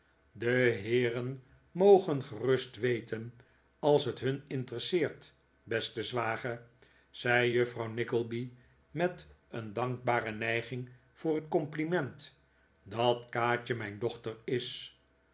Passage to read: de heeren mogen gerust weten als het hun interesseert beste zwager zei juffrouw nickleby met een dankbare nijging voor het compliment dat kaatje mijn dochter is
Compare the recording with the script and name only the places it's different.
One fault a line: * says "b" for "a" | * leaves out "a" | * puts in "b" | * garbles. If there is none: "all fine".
all fine